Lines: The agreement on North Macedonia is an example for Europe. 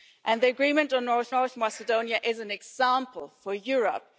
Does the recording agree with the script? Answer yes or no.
no